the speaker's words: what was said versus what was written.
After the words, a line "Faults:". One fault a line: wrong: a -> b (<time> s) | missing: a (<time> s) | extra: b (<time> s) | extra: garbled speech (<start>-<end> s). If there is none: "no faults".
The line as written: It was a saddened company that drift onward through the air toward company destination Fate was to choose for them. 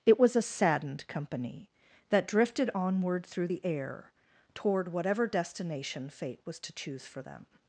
It was a saddened company that drifted onward through the air toward whatever destination Fate was to choose for them.
Faults:
wrong: drift -> drifted (2.3 s)
wrong: company -> whatever (4.9 s)